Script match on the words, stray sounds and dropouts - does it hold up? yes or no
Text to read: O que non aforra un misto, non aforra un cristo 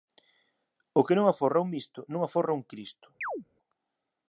no